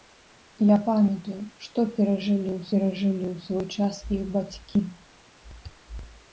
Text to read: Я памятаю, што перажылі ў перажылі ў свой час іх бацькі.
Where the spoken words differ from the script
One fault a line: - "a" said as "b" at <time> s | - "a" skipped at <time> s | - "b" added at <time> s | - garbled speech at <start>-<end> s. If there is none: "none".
none